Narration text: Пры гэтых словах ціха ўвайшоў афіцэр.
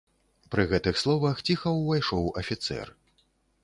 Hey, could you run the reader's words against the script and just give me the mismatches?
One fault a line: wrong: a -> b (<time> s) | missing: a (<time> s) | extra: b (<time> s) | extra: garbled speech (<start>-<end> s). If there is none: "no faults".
no faults